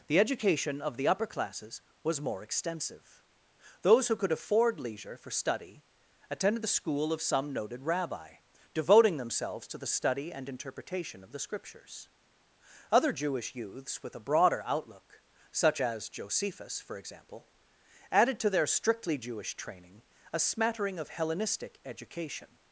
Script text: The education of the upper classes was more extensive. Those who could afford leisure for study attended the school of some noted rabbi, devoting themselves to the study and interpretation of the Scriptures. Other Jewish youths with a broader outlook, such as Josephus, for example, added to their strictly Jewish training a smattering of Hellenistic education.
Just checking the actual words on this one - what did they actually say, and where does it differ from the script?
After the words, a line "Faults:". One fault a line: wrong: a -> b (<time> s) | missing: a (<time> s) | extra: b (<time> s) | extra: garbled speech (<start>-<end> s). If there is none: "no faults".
The education of the upper classes was more extensive. Those who could afford leisure for study attended the school of some noted rabbi, devoting themselves to the study and interpretation of the Scriptures. Other Jewish youths with a broader outlook, such as Josephus, for example, added to their strictly Jewish training a smattering of Hellenistic education.
Faults:
no faults